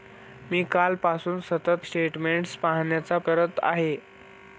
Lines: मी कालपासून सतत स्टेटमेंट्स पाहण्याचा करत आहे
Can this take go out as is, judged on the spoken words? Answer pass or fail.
pass